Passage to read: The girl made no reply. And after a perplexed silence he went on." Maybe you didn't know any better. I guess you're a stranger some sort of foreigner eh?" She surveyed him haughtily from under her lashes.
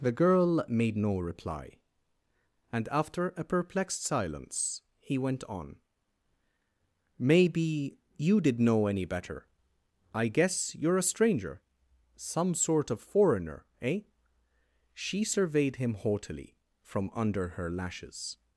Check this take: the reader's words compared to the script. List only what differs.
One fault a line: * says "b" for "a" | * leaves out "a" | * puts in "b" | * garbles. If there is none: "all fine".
* says "did" for "didn't"